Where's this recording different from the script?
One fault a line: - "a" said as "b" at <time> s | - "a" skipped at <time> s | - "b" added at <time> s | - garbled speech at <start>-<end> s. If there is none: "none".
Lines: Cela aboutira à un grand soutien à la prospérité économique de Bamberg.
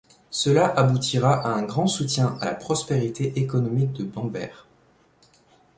none